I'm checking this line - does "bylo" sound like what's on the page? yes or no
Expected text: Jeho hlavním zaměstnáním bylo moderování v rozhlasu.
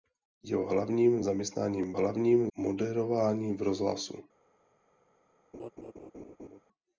no